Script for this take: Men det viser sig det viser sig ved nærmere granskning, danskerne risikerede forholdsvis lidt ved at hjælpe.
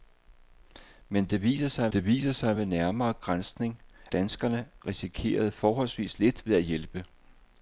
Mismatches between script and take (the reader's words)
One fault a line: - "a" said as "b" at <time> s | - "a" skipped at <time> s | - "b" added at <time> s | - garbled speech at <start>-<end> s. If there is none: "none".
none